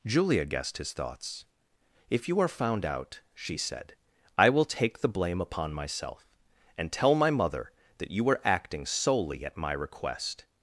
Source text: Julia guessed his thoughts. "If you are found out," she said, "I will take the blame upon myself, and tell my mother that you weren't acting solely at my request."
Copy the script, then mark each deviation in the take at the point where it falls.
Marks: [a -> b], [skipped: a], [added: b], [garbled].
Julia guessed his thoughts. "If you are found out," she said, "I will take the blame upon myself, and tell my mother that you [weren't -> were] acting solely at my request."